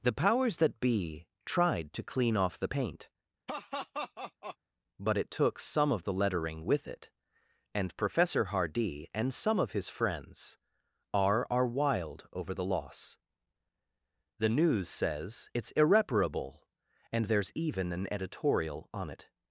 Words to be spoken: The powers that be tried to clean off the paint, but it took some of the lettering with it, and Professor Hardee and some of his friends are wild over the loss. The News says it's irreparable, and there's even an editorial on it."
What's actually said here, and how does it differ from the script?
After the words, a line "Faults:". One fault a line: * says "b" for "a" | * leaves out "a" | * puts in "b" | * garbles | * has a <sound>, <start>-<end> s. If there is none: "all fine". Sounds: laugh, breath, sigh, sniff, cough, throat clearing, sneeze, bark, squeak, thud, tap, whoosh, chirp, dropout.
The powers that be tried to clean off the paint, but it took some of the lettering with it, and Professor Hardee and some of his friends are are wild over the loss. The News says it's irreparable, and there's even an editorial on it."
Faults:
* has a laugh, 3.5-4.6 s
* puts in "are"